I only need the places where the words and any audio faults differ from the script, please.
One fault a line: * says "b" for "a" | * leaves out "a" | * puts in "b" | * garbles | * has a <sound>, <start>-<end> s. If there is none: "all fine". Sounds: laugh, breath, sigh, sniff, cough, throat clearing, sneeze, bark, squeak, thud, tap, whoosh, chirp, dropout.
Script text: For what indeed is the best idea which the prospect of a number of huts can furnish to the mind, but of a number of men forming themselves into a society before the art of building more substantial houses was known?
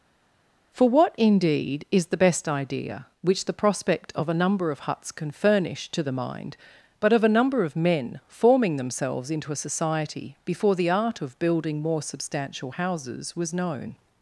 all fine